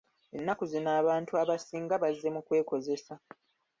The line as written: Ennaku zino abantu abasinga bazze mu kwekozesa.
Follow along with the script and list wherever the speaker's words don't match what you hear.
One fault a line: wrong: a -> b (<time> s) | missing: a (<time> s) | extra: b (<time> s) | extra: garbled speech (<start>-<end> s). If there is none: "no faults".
no faults